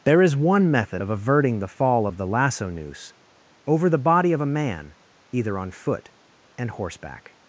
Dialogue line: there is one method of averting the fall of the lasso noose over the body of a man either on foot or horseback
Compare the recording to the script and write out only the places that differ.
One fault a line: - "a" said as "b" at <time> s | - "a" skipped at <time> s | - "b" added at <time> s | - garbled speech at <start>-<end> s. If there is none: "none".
- "or" said as "and" at 6.6 s